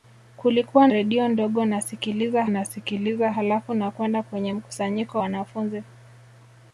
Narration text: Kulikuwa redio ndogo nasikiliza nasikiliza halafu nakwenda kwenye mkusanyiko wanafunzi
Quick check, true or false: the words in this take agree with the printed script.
true